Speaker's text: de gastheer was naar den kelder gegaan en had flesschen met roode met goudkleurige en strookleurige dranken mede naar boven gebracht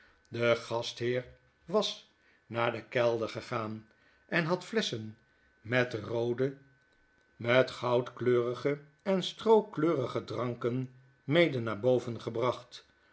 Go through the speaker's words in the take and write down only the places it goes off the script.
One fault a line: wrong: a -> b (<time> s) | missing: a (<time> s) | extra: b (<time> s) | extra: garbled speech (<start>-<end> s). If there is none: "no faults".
no faults